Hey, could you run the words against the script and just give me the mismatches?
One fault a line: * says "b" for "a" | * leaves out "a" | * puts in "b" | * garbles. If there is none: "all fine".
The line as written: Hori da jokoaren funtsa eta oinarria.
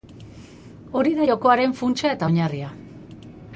all fine